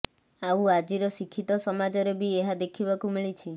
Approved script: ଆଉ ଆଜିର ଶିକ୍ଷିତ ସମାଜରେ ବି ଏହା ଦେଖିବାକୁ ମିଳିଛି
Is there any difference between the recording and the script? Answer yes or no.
no